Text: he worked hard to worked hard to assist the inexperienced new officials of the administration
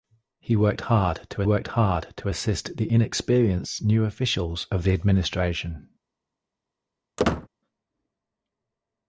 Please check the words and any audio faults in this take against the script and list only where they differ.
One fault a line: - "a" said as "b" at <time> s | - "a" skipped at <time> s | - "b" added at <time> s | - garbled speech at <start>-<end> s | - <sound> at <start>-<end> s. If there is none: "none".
- squeak at 7.2-7.5 s